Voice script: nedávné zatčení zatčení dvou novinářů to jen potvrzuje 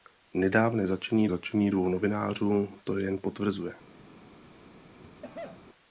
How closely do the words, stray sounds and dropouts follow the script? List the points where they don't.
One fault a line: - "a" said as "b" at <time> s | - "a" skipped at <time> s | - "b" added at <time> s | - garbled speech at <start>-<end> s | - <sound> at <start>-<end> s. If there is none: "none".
- cough at 5.0-5.6 s